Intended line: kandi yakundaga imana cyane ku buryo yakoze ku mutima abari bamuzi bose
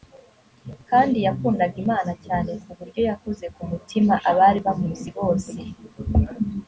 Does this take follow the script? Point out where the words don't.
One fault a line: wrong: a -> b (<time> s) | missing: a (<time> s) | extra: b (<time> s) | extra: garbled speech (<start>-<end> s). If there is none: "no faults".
no faults